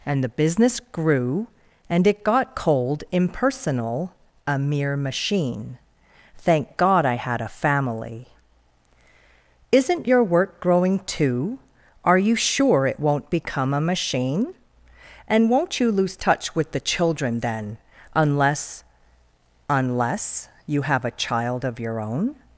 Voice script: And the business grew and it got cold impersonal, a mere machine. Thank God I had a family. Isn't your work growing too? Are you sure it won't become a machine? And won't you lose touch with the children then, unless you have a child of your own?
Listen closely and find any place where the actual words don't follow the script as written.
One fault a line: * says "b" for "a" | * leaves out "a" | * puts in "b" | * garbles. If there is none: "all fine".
* puts in "unless"